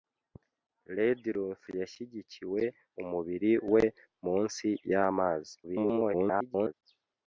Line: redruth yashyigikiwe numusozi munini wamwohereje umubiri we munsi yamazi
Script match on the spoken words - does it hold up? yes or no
no